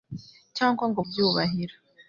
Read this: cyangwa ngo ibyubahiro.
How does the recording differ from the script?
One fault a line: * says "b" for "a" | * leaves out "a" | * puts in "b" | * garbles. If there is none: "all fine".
all fine